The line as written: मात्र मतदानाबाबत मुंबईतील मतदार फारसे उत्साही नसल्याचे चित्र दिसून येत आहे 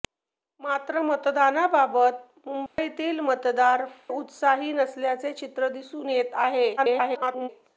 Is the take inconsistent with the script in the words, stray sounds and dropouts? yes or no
yes